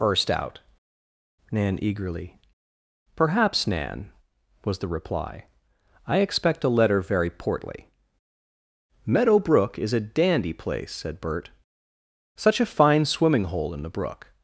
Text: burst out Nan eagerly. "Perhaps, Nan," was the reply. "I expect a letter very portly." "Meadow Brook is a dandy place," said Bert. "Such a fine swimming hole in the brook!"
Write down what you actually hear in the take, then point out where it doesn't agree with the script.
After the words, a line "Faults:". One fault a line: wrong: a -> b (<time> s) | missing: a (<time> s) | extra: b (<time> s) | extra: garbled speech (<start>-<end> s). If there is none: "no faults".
burst out Nan eagerly. "Perhaps, Nan," was the reply. "I expect a letter very portly." "Meadow Brook is a dandy place," said Bert. "Such a fine swimming hole in the brook!"
Faults:
no faults